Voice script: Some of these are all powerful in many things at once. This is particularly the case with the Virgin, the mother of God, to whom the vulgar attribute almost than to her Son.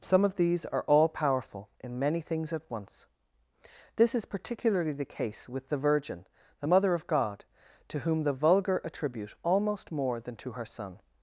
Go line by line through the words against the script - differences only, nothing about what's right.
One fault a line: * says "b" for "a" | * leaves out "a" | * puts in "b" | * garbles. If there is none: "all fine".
* puts in "more"